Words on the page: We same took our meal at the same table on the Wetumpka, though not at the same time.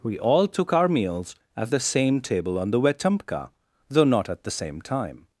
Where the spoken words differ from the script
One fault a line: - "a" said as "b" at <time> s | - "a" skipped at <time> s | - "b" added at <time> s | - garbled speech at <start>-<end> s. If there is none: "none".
- "same" said as "all" at 0.2 s
- "meal" said as "meals" at 0.9 s